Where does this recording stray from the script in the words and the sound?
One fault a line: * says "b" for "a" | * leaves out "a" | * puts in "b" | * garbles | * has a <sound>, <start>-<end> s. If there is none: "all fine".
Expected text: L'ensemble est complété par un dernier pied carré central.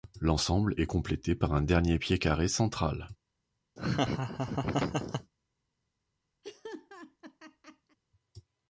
* has a laugh, 3.8-5.3 s
* has a laugh, 6.4-8.0 s